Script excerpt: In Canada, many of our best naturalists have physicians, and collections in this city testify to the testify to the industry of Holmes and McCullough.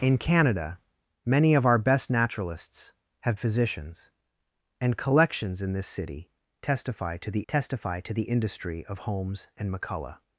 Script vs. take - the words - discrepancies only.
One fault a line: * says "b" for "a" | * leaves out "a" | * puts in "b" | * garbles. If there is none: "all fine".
all fine